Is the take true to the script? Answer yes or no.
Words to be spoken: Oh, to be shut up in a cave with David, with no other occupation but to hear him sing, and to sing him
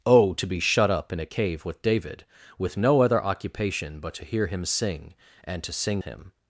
yes